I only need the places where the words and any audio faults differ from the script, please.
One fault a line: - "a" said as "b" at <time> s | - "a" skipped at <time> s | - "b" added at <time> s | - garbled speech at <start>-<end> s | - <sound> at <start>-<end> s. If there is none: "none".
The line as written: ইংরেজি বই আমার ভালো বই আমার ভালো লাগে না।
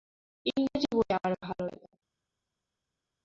- "বই আমার ভালো" skipped at 1.6 s